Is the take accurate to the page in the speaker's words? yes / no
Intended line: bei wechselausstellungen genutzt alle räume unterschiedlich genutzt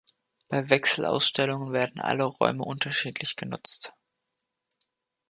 no